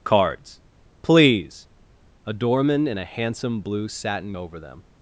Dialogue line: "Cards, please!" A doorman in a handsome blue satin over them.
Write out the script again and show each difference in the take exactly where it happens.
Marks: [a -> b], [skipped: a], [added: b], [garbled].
"Cards, please!" A doorman in a handsome blue satin over them.